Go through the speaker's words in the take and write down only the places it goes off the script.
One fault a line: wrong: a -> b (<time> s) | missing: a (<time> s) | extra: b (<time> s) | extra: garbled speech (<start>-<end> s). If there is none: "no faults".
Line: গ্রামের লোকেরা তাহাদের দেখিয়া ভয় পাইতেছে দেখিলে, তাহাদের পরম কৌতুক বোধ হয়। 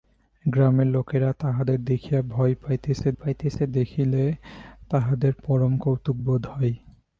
extra: পাইতেছে (3.1 s)